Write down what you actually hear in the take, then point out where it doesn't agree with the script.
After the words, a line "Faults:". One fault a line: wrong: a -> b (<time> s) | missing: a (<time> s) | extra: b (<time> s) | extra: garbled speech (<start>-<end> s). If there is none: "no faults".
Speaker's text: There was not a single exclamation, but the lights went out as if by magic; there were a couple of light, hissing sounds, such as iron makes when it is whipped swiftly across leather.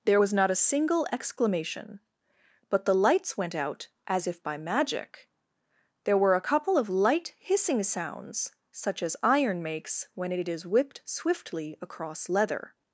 There was not a single exclamation, but the lights went out as if by magic; there were a couple of light, hissing sounds, such as iron makes when it is whipped swiftly across leather.
Faults:
no faults